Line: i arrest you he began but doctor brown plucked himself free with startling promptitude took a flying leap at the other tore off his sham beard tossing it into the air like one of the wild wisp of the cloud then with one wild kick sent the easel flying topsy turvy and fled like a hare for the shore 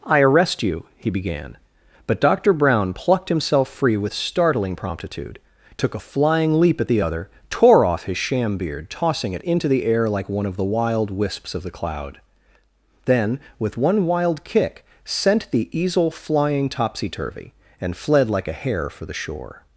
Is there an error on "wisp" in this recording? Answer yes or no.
yes